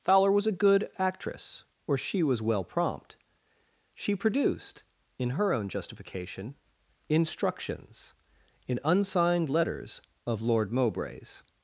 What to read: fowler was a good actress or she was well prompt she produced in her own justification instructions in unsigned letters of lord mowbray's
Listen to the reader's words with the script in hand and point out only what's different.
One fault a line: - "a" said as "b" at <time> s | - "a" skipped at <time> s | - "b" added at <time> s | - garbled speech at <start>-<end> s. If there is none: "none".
none